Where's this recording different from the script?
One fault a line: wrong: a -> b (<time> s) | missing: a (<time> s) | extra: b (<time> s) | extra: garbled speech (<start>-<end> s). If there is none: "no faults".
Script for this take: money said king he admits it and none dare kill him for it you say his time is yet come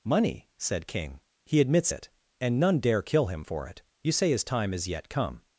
no faults